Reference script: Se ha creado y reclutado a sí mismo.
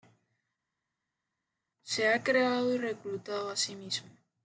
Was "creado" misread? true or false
false